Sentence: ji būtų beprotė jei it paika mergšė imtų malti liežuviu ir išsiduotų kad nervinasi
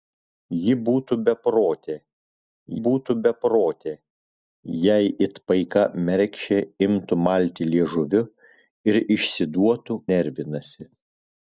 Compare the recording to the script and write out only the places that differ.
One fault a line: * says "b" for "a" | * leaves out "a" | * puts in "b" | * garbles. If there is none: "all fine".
* puts in "būtų beprotė"
* leaves out "kad"